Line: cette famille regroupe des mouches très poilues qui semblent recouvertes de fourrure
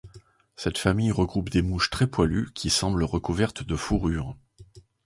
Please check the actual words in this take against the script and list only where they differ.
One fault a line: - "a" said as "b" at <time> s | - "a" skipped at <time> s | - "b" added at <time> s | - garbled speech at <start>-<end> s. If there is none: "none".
none